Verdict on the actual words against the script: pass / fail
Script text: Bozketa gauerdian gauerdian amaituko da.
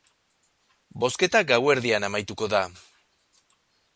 fail